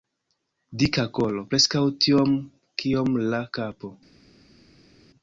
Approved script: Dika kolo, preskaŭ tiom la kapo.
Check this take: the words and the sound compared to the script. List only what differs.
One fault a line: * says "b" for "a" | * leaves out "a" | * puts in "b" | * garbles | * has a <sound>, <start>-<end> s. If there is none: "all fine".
* puts in "kiom"